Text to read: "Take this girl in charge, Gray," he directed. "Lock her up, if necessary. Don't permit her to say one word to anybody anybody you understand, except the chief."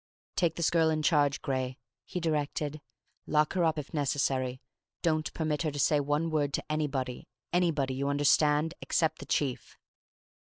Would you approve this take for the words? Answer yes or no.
yes